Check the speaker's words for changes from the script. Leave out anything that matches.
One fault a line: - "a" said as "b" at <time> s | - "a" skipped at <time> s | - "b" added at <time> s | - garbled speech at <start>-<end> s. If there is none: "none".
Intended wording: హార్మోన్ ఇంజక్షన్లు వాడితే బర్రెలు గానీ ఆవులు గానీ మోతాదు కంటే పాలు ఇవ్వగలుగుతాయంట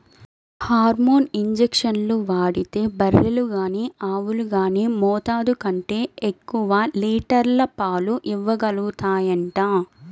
- "ఎక్కువ లీటర్ల" added at 6.3 s